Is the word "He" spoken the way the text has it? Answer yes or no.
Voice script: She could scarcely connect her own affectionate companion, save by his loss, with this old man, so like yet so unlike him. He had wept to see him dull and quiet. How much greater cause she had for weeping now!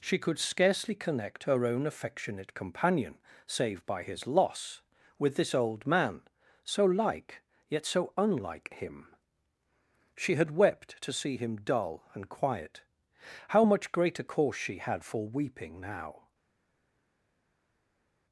no